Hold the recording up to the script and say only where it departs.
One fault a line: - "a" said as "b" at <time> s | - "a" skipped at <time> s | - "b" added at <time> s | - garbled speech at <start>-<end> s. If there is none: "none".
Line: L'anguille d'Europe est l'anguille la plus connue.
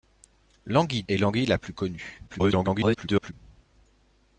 - "d'Europe" skipped at 1.0 s
- garbled speech at 2.3-3.3 s